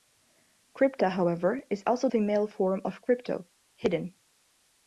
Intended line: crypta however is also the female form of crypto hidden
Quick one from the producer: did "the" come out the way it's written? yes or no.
no